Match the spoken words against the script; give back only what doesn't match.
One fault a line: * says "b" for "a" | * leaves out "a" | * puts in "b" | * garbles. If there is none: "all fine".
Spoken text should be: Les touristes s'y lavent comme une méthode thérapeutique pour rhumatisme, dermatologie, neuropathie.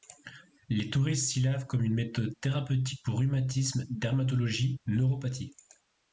all fine